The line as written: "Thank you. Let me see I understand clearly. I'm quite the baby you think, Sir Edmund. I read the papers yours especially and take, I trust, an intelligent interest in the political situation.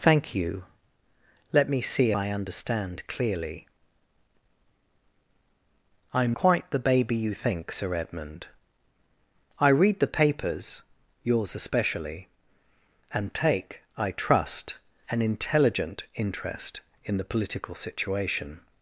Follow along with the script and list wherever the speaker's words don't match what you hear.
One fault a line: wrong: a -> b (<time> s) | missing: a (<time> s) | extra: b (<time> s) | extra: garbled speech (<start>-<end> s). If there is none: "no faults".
no faults